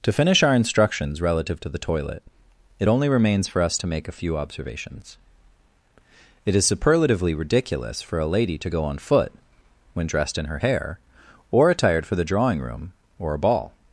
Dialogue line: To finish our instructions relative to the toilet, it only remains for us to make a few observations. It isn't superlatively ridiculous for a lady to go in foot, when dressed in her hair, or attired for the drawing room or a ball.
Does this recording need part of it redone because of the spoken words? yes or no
yes